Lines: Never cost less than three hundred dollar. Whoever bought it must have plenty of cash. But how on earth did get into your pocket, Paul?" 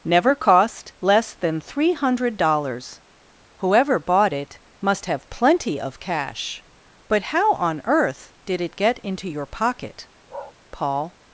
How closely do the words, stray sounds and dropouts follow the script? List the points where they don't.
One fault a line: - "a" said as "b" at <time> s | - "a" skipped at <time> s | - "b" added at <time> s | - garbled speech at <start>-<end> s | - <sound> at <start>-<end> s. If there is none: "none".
- "dollar" said as "dollars" at 2.4 s
- "it" added at 8.6 s
- bark at 10.3-10.5 s